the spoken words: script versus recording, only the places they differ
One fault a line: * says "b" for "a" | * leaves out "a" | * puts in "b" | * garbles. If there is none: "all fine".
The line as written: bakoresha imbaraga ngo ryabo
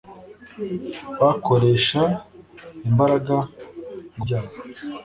all fine